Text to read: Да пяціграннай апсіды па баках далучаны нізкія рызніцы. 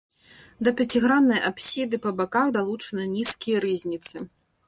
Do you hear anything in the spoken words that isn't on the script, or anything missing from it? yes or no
no